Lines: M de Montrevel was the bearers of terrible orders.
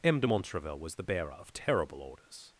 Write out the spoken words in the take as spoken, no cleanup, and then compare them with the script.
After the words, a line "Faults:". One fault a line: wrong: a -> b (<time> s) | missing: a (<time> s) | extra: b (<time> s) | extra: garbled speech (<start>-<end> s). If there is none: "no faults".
M de Montrevel was the bearer of terrible orders.
Faults:
wrong: bearers -> bearer (1.0 s)